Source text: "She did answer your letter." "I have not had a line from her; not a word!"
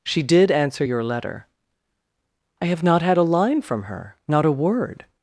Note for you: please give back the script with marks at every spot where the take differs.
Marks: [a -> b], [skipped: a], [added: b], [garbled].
"She did answer your letter." "I have not had a line from her; not a word!"